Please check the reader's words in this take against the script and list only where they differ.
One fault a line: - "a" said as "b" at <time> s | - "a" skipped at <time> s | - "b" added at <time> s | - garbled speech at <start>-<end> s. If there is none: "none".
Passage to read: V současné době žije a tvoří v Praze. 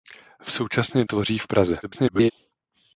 - "době žije a" skipped at 1.1 s
- garbled speech at 1.8-2.3 s